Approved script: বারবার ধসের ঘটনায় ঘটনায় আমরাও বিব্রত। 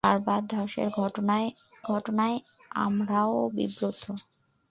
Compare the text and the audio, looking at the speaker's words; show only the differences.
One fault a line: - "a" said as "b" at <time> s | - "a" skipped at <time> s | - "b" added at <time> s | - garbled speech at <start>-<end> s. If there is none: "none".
none